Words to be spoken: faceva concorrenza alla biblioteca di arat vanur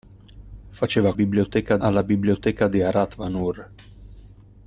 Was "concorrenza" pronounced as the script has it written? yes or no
no